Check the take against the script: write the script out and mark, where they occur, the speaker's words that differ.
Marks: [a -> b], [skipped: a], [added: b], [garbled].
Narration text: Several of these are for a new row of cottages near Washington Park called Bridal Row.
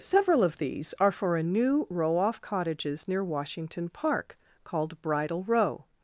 Several of these are for a new row [of -> off] cottages near Washington Park called Bridal Row.